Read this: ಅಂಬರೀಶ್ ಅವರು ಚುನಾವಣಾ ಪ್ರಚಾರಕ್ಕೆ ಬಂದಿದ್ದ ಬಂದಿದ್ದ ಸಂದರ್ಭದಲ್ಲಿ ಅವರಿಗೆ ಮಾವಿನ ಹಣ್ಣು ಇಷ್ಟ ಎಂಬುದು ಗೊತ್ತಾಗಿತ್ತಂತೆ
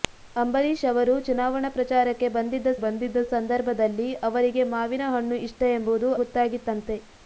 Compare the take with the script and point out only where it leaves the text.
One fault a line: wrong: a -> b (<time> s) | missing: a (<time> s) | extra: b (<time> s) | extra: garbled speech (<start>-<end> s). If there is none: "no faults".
no faults